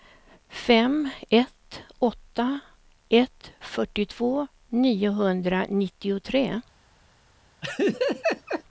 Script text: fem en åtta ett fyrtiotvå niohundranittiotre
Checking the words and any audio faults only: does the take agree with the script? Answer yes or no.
no